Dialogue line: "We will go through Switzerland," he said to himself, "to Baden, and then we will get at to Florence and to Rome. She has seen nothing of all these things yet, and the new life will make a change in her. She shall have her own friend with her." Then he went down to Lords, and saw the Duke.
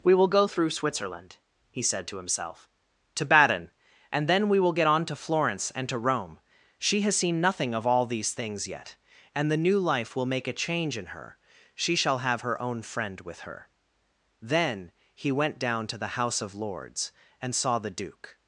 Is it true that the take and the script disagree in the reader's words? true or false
true